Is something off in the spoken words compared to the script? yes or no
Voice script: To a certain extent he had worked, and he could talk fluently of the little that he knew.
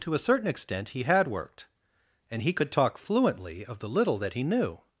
no